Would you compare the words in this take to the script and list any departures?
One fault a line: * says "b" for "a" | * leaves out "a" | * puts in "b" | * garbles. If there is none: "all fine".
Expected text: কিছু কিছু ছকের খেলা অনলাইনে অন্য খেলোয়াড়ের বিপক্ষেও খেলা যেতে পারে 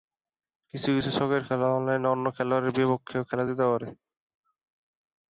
all fine